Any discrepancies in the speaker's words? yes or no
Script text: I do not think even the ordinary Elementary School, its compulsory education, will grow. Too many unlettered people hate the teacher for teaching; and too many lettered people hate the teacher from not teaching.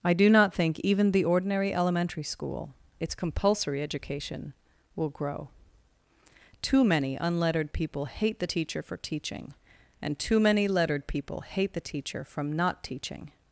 no